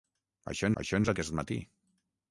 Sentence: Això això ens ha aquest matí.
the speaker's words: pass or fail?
pass